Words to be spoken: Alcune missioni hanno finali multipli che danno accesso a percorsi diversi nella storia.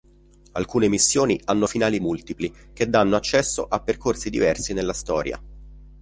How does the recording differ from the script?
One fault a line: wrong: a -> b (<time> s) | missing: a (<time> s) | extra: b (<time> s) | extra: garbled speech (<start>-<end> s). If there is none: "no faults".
no faults